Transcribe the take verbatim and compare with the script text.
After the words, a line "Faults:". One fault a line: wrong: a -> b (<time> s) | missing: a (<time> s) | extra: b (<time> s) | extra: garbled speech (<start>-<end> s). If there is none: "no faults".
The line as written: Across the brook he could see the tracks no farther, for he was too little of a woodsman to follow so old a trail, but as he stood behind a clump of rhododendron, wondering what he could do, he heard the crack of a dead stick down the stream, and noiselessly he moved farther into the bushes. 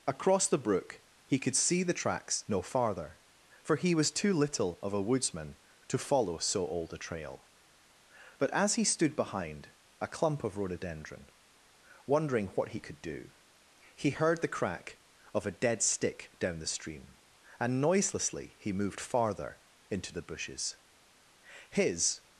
Across the brook he could see the tracks no farther, for he was too little of a woodsman to follow so old a trail, but as he stood behind a clump of rhododendron, wondering what he could do, he heard the crack of a dead stick down the stream, and noiselessly he moved farther into the bushes. His
Faults:
extra: His (21.7 s)